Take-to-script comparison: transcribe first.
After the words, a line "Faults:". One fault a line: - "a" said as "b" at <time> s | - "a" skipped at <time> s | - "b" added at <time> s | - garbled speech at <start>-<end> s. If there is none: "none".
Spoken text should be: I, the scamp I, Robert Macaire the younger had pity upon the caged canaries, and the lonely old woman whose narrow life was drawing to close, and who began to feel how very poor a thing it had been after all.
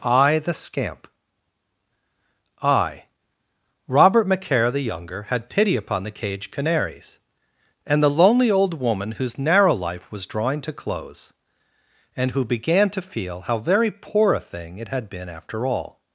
I, the scamp I, Robert Macaire the younger had pity upon the caged canaries, and the lonely old woman whose narrow life was drawing to close, and who began to feel how very poor a thing it had been after all.
Faults:
none